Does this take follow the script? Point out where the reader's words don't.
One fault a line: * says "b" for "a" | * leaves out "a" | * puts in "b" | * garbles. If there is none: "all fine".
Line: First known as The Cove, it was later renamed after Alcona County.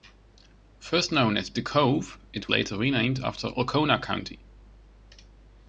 * leaves out "was"